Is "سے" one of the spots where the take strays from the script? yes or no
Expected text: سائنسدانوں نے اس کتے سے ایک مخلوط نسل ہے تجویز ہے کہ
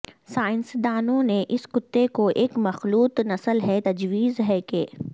yes